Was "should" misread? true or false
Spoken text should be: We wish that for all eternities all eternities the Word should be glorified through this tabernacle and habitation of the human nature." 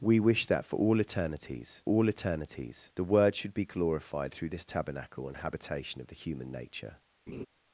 false